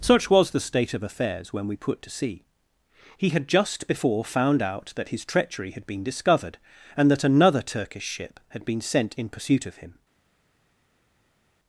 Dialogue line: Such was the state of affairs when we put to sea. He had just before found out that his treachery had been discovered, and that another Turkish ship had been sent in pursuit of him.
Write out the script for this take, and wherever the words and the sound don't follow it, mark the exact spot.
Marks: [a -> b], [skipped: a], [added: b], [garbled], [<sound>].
Such was the state of affairs when we put to sea. He had just before found out that his treachery had been discovered, and that another Turkish ship had been sent in pursuit of him.